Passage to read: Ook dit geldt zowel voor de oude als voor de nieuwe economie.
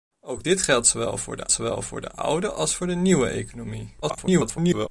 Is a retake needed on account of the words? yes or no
yes